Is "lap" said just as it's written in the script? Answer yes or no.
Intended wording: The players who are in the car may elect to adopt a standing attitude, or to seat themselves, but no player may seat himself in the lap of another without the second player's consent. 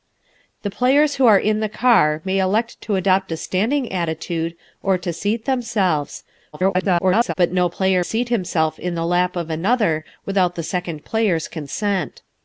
yes